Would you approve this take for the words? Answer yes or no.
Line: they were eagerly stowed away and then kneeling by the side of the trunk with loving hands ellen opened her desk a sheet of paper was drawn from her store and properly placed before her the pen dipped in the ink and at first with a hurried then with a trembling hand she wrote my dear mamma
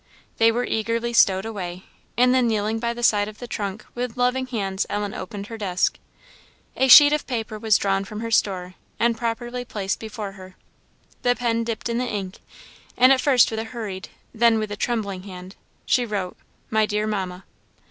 yes